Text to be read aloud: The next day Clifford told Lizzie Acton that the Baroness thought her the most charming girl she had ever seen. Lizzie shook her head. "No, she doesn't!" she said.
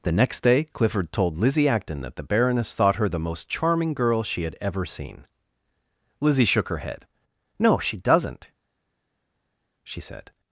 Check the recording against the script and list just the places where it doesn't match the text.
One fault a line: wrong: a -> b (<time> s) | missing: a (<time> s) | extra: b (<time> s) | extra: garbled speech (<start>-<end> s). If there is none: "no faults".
no faults